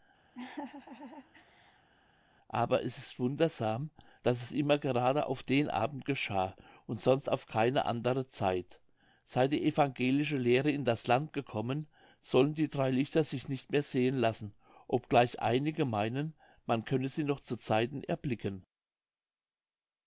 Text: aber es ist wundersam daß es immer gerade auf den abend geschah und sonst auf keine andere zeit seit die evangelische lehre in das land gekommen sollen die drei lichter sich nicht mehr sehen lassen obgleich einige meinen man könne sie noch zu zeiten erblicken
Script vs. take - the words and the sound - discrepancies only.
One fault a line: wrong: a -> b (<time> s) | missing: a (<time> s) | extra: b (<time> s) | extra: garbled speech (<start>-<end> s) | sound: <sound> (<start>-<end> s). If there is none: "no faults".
sound: laugh (0.3-1.9 s)